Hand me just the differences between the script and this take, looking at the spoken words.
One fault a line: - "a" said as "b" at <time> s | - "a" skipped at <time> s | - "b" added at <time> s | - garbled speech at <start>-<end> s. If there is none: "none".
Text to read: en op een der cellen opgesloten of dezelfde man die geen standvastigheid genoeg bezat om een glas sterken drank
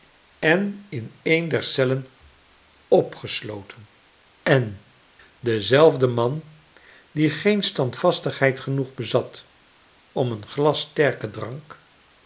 - "op" said as "in" at 0.9 s
- "of" said as "en" at 4.4 s